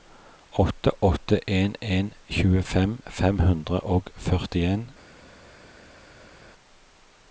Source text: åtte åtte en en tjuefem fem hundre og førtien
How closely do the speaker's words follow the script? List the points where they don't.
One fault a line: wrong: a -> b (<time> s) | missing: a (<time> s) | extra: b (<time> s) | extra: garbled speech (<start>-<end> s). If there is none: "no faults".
no faults